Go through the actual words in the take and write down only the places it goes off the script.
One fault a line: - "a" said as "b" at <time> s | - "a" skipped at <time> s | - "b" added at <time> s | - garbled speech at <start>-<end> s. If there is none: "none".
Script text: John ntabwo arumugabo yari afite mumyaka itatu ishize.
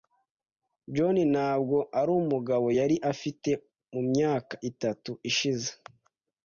none